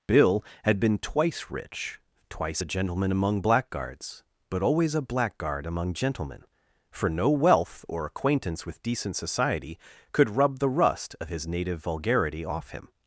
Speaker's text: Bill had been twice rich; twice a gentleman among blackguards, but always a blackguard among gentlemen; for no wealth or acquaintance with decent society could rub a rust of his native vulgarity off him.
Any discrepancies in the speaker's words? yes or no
yes